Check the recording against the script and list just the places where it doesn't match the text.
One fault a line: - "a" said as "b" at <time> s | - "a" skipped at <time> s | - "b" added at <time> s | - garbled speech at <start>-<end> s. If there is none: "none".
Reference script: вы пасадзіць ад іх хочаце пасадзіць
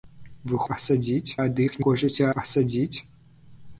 none